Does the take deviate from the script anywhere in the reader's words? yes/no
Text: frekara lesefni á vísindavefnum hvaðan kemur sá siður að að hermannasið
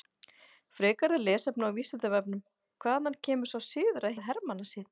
no